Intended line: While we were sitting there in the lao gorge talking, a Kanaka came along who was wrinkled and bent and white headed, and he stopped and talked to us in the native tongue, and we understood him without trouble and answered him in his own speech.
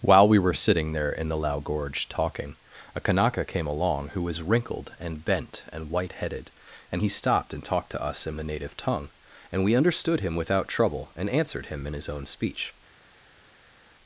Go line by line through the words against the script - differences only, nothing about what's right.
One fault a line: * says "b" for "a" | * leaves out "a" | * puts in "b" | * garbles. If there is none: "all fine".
all fine